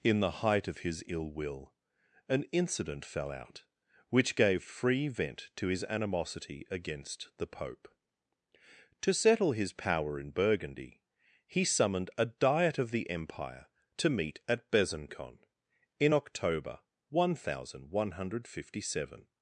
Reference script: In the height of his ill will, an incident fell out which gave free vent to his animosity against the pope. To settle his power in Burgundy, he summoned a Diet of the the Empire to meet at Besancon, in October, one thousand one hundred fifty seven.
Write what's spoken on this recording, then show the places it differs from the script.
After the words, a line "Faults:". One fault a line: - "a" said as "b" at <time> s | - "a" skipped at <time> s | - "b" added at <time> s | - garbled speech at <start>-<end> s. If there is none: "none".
In the height of his ill will, an incident fell out which gave free vent to his animosity against the pope. To settle his power in Burgundy, he summoned a Diet of the Empire to meet at Besancon, in October, one thousand one hundred fifty seven.
Faults:
- "the" skipped at 13.1 s